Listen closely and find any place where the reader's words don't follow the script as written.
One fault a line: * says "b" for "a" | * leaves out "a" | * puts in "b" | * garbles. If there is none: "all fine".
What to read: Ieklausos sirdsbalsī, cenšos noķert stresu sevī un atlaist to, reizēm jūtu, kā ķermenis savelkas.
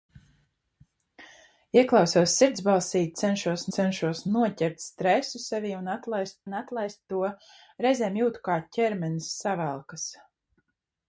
* puts in "cenšos"
* puts in "un atlaist"